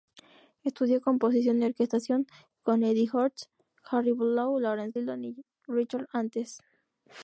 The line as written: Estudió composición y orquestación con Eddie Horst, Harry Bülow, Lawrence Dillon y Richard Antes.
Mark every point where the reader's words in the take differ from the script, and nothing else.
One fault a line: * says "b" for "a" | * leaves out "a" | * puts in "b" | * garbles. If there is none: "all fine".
all fine